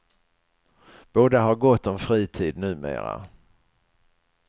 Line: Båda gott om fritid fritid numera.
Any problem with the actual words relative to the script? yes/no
yes